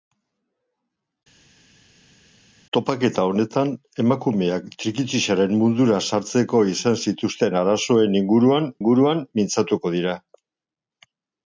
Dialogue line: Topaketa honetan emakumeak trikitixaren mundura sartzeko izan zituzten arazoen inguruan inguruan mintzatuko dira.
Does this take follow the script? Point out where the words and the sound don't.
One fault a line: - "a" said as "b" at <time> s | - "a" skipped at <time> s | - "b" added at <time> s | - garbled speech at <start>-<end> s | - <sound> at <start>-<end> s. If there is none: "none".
none